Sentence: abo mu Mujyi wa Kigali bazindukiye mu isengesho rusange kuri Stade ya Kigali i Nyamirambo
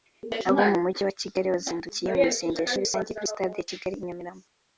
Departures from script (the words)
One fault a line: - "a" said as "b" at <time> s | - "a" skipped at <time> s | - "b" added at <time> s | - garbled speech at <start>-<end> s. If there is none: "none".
none